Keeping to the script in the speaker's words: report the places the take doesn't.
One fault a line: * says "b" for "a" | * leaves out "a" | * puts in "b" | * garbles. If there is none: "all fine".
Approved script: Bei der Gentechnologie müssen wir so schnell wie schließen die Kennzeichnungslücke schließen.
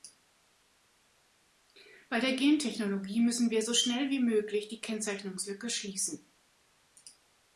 * says "möglich" for "schließen"